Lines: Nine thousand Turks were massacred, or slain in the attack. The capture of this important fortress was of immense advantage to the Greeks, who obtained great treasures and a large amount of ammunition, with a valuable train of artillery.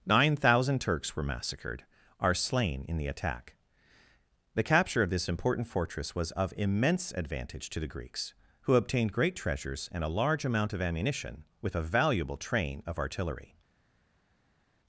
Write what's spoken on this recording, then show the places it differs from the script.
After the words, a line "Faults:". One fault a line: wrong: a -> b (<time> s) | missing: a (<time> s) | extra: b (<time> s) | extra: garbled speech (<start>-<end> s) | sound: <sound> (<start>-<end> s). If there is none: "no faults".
Nine thousand Turks were massacred, are slain in the attack. The capture of this important fortress was of immense advantage to the Greeks, who obtained great treasures and a large amount of ammunition, with a valuable train of artillery.
Faults:
wrong: or -> are (2.2 s)